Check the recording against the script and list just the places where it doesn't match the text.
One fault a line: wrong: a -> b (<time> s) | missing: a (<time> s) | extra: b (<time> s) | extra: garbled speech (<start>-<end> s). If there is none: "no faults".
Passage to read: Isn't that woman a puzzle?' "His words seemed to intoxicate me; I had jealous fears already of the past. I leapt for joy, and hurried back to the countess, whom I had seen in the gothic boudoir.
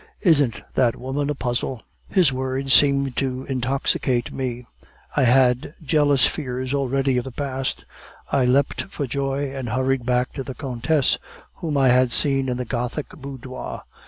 no faults